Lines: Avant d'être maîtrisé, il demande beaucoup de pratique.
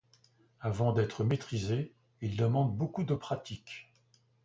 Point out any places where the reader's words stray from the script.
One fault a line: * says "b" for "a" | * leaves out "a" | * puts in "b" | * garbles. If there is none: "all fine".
all fine